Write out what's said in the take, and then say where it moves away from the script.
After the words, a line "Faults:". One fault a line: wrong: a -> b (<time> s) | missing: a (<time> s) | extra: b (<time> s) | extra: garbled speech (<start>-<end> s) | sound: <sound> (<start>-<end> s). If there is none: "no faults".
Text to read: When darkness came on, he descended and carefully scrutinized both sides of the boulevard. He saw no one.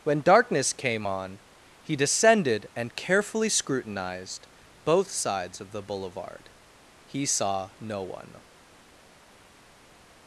When darkness came on, he descended and carefully scrutinized both sides of the boulevard. He saw no one.
Faults:
no faults